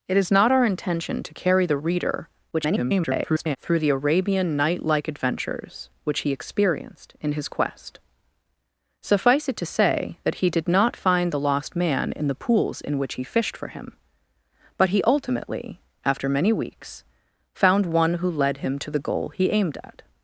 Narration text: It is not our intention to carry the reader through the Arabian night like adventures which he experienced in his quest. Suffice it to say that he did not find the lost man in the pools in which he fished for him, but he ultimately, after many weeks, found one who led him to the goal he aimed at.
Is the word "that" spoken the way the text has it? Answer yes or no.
yes